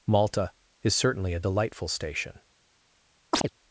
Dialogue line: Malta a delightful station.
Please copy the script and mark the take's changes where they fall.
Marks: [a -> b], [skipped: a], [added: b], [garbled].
Malta [added: is certainly] a delightful station.